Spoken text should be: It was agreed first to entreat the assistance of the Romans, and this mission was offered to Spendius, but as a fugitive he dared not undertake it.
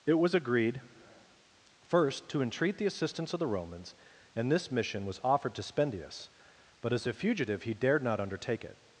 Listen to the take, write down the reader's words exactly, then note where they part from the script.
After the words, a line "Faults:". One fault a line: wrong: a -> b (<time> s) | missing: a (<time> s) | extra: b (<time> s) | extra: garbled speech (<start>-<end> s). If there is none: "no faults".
It was agreed first to entreat the assistance of the Romans, and this mission was offered to Spendius, but as a fugitive he dared not undertake it.
Faults:
no faults